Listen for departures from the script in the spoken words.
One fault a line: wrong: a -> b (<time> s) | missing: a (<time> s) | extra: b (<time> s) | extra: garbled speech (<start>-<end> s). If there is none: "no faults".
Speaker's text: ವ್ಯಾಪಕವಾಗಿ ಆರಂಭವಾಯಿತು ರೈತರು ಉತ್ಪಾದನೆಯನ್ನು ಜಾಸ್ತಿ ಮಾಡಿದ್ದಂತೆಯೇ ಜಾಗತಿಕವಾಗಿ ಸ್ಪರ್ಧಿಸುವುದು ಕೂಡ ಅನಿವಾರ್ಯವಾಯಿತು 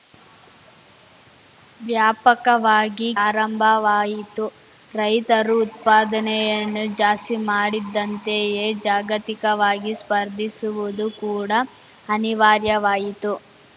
no faults